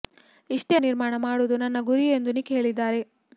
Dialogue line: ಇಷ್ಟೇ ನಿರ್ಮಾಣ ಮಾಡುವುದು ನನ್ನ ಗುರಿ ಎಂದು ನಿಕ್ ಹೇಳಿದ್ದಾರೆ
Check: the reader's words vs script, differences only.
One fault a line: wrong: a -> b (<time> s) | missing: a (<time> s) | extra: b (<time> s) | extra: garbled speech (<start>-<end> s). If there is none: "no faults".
no faults